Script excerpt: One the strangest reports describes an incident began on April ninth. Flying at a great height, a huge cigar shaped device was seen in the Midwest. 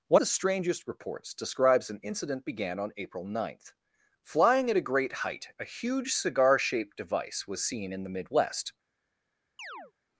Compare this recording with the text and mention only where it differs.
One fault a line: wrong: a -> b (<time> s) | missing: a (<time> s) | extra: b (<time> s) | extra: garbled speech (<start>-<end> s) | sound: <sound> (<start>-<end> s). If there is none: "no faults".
sound: chirp (9.6-9.9 s)